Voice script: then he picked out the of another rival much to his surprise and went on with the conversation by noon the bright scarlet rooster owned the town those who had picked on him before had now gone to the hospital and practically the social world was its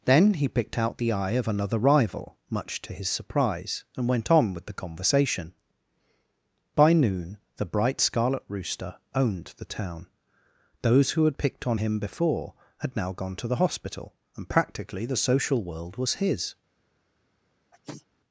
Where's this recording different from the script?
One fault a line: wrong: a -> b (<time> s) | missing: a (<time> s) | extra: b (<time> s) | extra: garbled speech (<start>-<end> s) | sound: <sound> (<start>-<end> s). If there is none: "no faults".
extra: eye (1.1 s)
wrong: its -> his (16.1 s)
sound: sneeze (17.7-18.1 s)